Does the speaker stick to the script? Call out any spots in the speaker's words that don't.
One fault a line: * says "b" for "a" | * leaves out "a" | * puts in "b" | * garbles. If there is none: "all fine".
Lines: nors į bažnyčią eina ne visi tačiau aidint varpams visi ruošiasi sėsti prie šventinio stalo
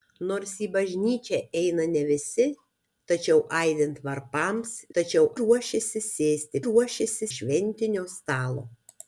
* says "tačiau" for "visi"
* says "ruošiasi" for "prie"